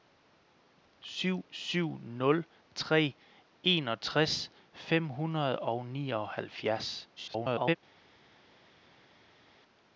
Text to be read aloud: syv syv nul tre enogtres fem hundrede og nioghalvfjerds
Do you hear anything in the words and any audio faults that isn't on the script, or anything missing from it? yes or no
yes